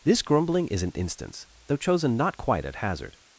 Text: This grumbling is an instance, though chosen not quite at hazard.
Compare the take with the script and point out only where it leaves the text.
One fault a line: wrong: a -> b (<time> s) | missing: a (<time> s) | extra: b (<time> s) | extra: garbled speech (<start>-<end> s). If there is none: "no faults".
no faults